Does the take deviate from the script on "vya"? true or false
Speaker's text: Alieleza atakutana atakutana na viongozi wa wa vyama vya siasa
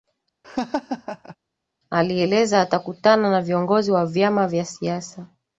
false